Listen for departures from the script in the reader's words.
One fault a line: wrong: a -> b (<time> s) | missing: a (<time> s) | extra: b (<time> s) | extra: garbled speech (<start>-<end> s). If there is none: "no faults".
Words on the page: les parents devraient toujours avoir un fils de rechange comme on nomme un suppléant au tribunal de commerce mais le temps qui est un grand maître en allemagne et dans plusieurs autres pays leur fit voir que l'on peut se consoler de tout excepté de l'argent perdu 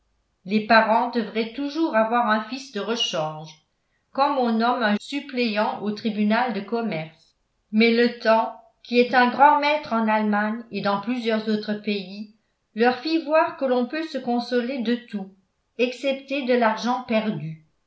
no faults